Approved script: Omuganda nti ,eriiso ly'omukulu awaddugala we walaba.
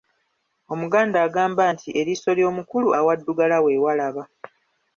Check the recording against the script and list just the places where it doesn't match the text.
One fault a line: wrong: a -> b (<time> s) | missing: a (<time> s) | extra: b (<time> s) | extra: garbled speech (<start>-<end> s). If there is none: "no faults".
extra: agamba (1.3 s)